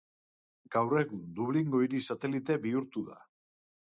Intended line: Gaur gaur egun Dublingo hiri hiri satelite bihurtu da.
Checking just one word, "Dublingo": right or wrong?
right